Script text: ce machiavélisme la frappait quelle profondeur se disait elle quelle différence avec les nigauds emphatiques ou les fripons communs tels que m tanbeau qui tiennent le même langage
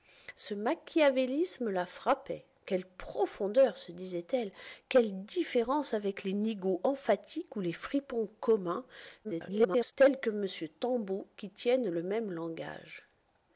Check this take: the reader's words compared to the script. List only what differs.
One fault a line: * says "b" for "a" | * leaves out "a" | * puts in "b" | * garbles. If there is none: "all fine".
* garbles